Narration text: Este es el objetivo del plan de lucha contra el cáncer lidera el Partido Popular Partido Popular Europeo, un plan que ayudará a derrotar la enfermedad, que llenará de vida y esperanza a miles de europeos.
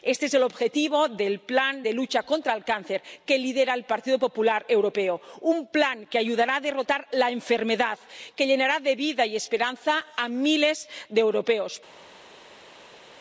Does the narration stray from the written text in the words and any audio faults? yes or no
yes